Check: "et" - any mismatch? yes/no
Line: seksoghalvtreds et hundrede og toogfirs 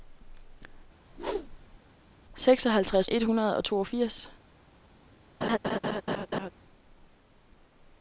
no